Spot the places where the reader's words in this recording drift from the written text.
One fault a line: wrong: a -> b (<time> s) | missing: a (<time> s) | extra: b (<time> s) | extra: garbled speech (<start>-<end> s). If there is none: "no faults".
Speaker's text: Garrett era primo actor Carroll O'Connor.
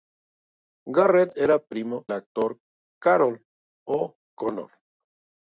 no faults